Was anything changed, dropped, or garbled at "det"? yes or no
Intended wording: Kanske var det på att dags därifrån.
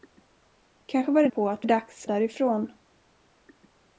no